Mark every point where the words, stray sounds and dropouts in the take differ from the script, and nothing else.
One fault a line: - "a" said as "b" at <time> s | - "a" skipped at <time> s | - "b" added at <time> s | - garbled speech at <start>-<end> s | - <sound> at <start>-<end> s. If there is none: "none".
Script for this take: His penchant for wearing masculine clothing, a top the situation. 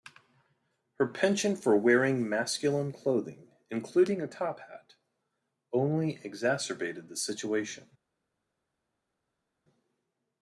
- "His" said as "Her" at 0.9 s
- "including" added at 3.7 s
- "hat only exacerbated" added at 4.6 s